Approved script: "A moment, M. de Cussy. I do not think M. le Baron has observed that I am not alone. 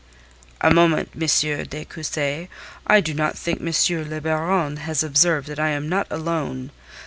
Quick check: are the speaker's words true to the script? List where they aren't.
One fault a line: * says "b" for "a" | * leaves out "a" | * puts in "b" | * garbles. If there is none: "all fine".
all fine